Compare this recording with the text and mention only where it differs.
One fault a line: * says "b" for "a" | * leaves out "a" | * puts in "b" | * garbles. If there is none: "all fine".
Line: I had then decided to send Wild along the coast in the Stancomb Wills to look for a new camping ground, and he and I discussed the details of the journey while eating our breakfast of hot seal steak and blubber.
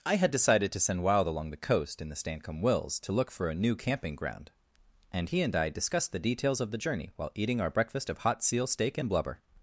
* leaves out "then"